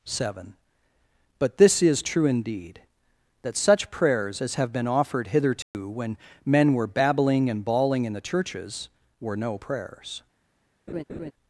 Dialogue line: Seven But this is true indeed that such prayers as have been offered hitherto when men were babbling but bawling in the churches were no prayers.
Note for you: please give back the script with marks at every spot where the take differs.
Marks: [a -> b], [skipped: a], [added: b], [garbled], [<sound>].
Seven But this is true indeed that such prayers as have been offered hitherto [dropout] when men were babbling [but -> and] bawling in the churches were no prayers. [laugh]